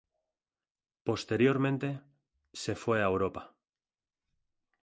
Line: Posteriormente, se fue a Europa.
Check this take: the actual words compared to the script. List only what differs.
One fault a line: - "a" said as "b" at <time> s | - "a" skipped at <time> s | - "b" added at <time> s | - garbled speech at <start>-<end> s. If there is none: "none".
none